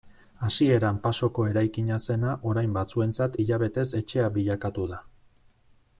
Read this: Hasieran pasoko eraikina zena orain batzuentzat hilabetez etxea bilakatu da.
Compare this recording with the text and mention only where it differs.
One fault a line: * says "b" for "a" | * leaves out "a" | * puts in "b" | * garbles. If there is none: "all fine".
all fine